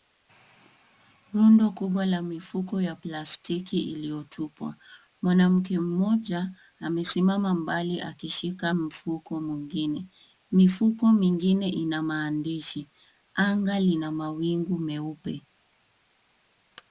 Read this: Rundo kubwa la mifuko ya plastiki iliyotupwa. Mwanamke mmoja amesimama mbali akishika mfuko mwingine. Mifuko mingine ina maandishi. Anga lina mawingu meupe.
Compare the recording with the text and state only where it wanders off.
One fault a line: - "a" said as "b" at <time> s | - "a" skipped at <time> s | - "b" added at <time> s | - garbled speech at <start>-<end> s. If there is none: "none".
none